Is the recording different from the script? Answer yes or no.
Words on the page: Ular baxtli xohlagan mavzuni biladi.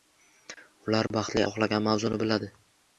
no